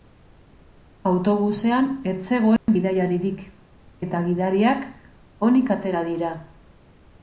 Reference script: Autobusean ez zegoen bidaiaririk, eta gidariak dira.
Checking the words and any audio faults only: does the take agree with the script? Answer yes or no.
no